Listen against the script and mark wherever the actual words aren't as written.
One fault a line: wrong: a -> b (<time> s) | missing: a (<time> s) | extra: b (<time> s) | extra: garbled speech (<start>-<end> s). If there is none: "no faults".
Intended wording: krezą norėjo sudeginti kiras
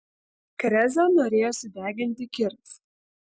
no faults